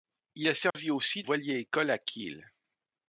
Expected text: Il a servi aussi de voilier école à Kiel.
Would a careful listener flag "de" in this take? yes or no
yes